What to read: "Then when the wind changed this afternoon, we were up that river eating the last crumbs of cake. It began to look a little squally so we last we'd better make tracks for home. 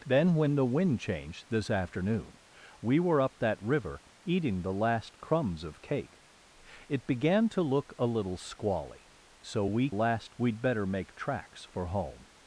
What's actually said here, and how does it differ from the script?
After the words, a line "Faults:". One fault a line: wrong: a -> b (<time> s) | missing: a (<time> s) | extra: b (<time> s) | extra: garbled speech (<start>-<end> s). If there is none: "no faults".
"Then when the wind changed this afternoon, we were up that river eating the last crumbs of cake. It began to look a little squally so we last we'd better make tracks for home.
Faults:
no faults